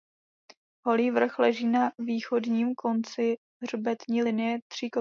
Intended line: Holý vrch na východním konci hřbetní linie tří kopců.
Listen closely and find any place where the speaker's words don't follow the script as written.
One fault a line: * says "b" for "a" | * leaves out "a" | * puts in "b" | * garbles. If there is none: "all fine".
* puts in "leží"